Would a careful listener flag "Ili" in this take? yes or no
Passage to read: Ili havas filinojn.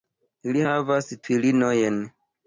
no